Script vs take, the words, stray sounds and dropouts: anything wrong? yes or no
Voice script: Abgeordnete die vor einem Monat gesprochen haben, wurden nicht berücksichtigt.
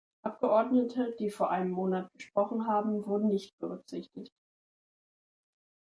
no